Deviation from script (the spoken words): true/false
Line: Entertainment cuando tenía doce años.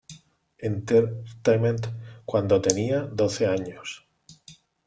false